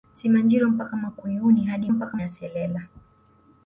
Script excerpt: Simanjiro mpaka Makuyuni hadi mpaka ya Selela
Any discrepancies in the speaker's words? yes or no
no